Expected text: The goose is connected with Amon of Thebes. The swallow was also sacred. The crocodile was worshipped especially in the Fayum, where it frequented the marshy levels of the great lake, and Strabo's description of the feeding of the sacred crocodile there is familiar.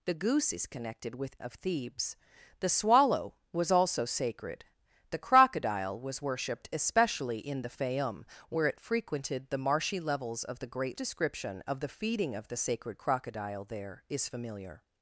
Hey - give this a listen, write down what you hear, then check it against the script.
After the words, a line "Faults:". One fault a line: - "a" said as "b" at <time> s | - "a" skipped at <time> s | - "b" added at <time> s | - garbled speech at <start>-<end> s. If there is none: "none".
The goose is connected with Of Thebes. The swallow was also sacred. The crocodile was worshipped especially in the Fayum, where it frequented the marshy levels of the great description of the feeding of the sacred crocodile there is familiar.
Faults:
- "Amon" skipped at 1.4 s
- "lake and Strabo's" skipped at 11.0 s